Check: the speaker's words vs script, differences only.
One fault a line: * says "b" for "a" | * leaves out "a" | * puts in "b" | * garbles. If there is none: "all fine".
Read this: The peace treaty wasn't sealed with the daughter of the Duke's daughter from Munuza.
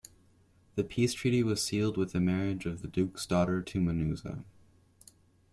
* says "was" for "wasn't"
* says "marriage" for "daughter"
* says "to" for "from"